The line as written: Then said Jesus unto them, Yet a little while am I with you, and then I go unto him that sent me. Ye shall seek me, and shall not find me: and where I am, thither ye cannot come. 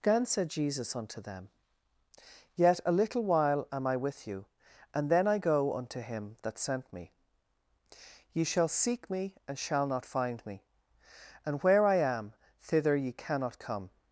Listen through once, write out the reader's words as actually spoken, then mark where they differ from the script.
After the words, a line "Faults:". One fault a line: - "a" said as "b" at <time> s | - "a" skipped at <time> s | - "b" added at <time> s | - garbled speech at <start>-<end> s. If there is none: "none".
Again said Jesus unto them, Yet a little while am I with you, and then I go unto him that sent me. Ye shall seek me, and shall not find me: and where I am, thither ye cannot come.
Faults:
- "Then" said as "Again" at 0.0 s